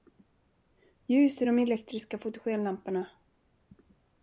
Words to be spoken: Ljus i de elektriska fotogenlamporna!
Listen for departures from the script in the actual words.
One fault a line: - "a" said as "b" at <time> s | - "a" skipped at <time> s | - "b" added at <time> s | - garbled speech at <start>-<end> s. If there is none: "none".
none